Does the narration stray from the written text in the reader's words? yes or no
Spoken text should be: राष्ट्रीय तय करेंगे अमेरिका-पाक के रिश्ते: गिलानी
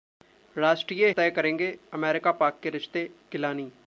no